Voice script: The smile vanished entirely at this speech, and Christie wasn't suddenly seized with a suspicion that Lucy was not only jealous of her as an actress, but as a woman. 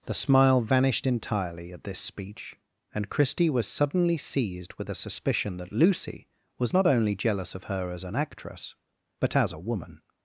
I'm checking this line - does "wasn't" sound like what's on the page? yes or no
no